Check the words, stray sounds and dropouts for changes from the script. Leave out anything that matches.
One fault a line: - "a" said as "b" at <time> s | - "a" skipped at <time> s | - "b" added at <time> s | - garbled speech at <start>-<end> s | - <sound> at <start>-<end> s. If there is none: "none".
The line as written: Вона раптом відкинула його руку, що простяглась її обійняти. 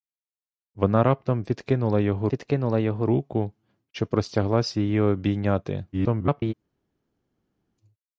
- "відкинула його" added at 2.3 s
- garbled speech at 5.9-6.5 s